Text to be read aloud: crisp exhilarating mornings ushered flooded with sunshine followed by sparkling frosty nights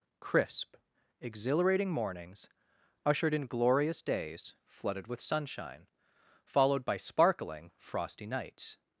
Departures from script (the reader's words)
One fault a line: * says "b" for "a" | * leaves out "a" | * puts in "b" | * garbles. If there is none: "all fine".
* puts in "in glorious days"